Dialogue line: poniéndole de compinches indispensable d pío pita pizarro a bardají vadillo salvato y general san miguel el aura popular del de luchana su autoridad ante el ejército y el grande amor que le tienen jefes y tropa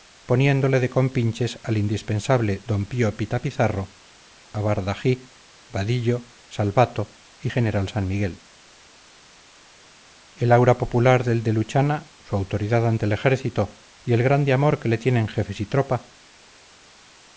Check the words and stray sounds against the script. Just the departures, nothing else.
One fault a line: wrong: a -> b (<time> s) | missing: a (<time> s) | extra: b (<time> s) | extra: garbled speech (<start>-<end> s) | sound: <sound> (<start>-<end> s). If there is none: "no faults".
extra: al (1.6 s)